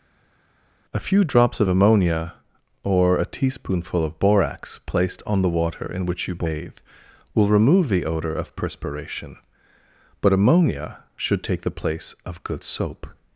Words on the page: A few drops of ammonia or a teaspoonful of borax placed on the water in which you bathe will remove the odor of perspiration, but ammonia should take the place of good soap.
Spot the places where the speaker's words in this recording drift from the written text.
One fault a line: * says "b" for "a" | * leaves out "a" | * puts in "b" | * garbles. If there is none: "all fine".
all fine